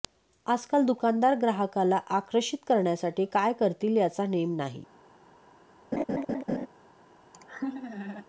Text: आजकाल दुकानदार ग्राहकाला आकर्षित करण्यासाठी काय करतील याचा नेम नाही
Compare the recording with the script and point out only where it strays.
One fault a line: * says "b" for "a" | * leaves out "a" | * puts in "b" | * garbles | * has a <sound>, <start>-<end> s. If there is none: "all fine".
* has a laugh, 5.9-6.7 s
* has a laugh, 7.3-8.3 s